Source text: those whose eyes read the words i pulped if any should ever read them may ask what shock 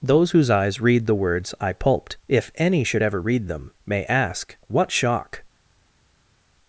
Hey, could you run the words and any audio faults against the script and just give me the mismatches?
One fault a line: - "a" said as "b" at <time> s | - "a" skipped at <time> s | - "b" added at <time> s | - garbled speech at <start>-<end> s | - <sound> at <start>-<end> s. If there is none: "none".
none